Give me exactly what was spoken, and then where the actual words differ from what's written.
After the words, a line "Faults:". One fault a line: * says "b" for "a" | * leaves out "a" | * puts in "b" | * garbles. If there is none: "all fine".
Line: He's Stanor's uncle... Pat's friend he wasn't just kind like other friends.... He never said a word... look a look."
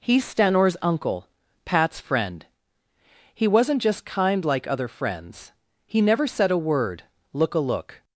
He's Stanor's uncle... Pat's friend he wasn't just kind like other friends.... He never said a word... look a look."
Faults:
all fine